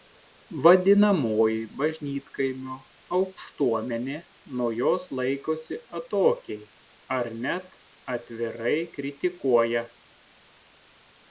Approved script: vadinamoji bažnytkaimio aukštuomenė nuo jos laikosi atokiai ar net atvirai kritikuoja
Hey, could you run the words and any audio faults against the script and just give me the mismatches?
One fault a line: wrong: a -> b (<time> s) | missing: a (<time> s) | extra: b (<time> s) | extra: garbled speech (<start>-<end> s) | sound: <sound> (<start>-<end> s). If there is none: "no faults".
no faults